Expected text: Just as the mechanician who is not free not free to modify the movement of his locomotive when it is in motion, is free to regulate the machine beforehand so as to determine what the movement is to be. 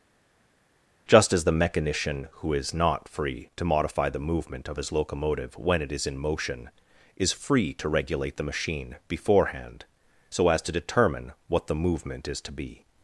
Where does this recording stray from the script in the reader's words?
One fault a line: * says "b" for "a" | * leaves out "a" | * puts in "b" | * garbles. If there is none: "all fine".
* leaves out "not free"